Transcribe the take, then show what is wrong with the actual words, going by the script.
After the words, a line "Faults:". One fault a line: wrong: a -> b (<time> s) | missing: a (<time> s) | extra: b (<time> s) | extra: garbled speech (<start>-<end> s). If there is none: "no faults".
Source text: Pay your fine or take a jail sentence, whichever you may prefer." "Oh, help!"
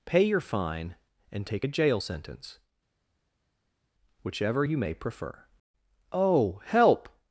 Pay your fine and take a jail sentence, whichever you may prefer." "Oh, help!"
Faults:
wrong: or -> and (1.3 s)